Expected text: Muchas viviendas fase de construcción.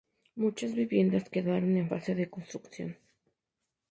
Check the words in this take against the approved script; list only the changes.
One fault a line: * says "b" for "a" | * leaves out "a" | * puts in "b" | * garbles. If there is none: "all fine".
* puts in "quedaron en"